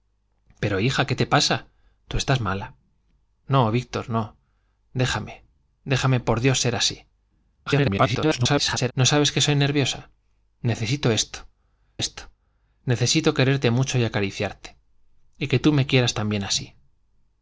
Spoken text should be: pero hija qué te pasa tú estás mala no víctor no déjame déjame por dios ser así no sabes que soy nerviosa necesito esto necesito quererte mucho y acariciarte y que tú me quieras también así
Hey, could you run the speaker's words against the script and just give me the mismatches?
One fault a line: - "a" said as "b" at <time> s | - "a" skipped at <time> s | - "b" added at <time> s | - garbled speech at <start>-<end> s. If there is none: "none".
- garbled speech at 7.7-8.9 s
- "esto" added at 12.0 s